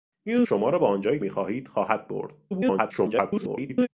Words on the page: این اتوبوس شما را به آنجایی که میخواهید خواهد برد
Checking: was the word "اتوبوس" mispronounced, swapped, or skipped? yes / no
yes